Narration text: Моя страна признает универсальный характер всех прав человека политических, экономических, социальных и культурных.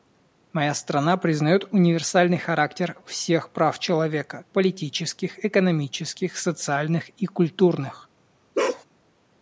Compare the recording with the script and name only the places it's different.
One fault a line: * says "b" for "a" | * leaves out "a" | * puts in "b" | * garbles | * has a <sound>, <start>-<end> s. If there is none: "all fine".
* has a bark, 8.5-8.8 s